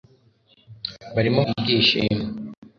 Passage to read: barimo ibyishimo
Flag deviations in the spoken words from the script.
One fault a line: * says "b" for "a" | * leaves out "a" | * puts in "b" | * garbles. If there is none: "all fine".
all fine